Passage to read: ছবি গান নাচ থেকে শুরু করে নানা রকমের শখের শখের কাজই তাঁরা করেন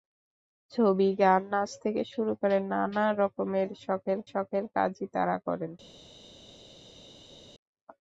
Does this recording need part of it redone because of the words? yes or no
no